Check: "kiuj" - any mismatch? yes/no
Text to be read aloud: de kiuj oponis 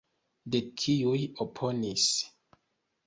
no